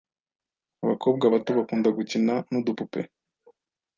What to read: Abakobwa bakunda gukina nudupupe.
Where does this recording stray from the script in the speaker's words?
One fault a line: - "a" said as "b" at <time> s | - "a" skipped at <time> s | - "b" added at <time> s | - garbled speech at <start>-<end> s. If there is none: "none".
- "bato" added at 1.3 s